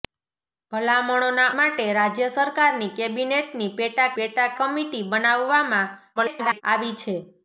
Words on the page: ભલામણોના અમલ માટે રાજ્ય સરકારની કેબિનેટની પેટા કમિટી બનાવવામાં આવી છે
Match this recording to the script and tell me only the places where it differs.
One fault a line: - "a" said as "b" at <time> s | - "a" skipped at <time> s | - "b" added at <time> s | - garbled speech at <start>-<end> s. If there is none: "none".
- "અમલ" skipped at 1.5 s
- "પેટા" added at 4.1 s
- garbled speech at 6.2-6.6 s